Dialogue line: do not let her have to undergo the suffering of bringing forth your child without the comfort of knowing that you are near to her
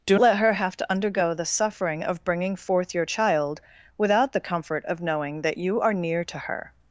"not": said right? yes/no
no